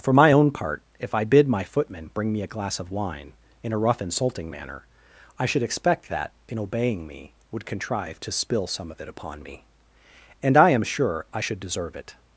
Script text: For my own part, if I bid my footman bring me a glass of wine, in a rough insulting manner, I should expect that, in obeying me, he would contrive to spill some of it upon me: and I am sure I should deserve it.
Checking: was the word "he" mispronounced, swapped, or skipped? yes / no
yes